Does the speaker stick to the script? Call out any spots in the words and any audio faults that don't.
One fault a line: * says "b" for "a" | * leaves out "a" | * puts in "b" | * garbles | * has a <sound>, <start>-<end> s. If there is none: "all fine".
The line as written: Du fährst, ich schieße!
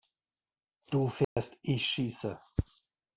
* has a dropout, 1.2-1.4 s